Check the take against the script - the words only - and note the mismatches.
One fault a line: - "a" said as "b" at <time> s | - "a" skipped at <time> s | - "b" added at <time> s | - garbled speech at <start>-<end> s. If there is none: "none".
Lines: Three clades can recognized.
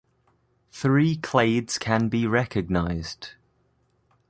- "be" added at 2.1 s